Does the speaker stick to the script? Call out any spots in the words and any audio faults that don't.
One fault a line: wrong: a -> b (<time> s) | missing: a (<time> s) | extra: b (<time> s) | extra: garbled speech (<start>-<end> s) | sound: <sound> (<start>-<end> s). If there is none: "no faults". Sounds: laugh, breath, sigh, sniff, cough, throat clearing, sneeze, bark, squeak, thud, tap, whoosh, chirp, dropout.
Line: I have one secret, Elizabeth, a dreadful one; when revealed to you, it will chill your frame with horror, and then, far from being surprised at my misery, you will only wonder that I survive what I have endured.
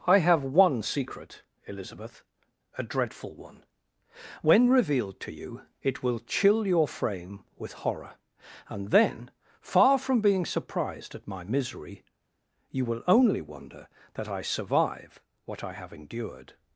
no faults